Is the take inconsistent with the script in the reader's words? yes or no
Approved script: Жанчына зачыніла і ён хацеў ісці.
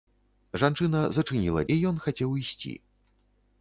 no